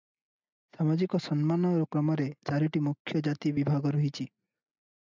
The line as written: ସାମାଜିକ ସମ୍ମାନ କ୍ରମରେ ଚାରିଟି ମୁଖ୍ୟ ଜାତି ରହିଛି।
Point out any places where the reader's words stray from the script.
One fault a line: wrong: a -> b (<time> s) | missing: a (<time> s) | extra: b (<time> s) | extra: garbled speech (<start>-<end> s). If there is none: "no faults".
extra: ବିଭାଗ (3.6 s)